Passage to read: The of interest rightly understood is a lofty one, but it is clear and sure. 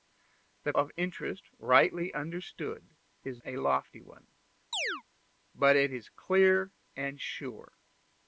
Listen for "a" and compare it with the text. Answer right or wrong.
right